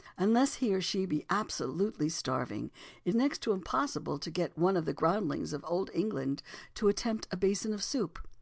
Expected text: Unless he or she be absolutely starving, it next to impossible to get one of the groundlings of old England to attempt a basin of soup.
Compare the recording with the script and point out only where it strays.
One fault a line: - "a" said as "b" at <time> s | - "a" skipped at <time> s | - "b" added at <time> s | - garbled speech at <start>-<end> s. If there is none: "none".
none